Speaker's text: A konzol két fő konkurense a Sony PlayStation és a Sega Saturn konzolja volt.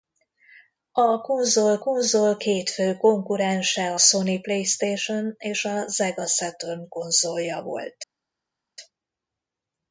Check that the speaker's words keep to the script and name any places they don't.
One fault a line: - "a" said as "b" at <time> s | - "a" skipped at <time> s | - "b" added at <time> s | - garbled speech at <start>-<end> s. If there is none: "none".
- "konzol" added at 1.8 s
- "a" skipped at 4.0 s